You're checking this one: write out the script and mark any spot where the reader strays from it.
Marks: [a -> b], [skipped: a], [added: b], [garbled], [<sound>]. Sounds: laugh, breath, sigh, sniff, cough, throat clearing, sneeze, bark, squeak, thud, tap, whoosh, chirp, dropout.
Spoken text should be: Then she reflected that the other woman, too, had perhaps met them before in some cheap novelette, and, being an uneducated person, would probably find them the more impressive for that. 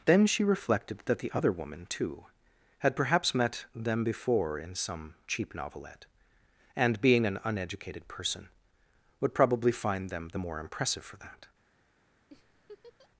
Then she reflected that the other woman, too, had perhaps met them before in some cheap novelette, and, being an uneducated person, would probably find them the more impressive for that. [laugh]